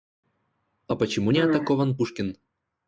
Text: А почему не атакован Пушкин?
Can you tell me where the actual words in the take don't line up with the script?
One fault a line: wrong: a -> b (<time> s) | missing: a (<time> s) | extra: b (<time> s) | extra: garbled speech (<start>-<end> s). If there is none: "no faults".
no faults